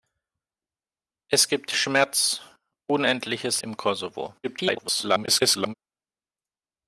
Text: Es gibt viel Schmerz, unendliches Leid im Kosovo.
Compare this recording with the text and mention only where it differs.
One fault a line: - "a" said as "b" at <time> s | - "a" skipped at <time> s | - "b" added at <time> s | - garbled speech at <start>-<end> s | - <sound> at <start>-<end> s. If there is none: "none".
- "viel" skipped at 1.7 s
- "Leid" skipped at 3.6 s
- garbled speech at 4.4-5.7 s